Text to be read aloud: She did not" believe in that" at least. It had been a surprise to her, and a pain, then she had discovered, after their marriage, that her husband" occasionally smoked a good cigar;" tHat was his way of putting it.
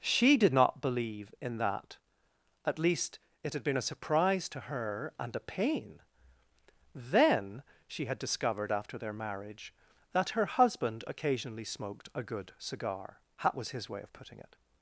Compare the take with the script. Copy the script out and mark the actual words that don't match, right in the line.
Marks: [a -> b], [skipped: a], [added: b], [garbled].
She did not" believe in that" at least. It had been a surprise to her, and a pain, then she had discovered, after their marriage, that her husband" occasionally smoked a good cigar;" tHat was his way of putting it.